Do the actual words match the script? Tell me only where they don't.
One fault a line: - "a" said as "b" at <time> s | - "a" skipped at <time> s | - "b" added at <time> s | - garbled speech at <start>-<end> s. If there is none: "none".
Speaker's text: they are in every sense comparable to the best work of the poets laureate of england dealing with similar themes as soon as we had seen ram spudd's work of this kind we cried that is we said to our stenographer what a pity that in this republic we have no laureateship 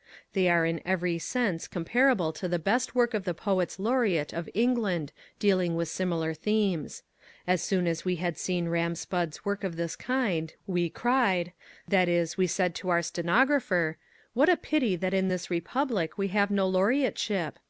none